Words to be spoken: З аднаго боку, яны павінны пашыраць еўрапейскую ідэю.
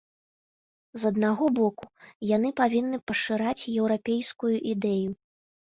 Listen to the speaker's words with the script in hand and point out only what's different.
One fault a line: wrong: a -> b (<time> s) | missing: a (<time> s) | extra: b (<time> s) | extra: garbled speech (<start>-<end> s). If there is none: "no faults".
no faults